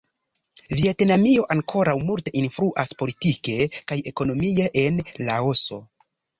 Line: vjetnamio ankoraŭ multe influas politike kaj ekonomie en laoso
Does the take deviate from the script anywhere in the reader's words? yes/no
no